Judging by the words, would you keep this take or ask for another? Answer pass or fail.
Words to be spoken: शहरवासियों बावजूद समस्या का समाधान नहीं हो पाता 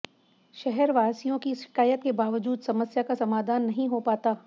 fail